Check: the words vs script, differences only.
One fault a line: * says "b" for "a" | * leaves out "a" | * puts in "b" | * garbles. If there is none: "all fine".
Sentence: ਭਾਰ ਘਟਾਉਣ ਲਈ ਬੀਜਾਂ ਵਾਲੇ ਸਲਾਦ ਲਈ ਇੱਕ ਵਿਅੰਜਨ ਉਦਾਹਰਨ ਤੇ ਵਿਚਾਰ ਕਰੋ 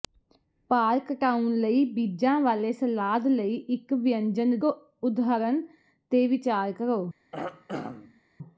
all fine